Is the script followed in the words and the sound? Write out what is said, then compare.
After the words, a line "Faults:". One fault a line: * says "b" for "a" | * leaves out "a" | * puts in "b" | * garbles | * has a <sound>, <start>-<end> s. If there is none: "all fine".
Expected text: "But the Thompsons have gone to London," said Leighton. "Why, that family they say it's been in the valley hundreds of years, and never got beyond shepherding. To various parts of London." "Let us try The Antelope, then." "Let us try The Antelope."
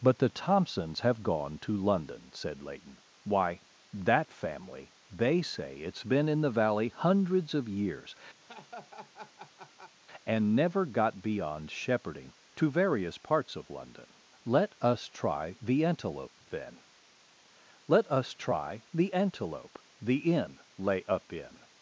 "But the Thompsons have gone to London," said Leighton. "Why, that family they say it's been in the valley hundreds of years, and never got beyond shepherding. To various parts of London." "Let us try The Antelope, then." "Let us try The Antelope." The inn lay up in
Faults:
* has a laugh, 8.4-9.9 s
* puts in "The inn lay up in"